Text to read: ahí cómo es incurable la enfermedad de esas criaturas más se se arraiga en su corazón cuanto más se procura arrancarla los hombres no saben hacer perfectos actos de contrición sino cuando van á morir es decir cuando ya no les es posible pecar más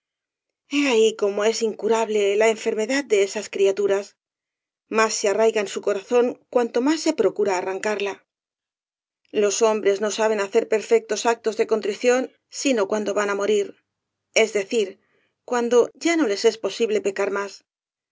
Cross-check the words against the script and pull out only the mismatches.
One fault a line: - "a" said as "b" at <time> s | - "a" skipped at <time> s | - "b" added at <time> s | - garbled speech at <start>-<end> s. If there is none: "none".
- "se" skipped at 5.3 s